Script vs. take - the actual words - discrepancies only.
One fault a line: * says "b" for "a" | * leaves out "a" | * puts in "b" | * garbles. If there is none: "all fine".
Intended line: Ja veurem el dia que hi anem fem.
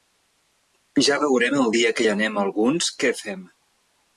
* puts in "alguns què"